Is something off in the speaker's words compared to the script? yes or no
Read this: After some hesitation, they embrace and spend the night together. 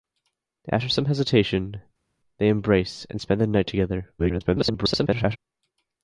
yes